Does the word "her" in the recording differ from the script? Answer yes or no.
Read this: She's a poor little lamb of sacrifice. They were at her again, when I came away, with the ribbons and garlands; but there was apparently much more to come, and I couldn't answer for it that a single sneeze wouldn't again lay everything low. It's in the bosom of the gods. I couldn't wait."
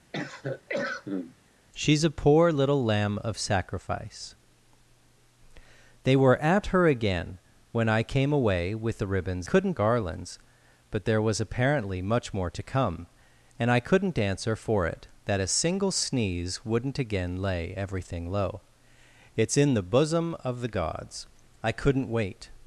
no